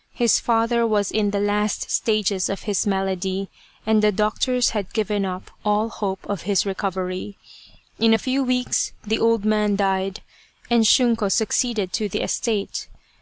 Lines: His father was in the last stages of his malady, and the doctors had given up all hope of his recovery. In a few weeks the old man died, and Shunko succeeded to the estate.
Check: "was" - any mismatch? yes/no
no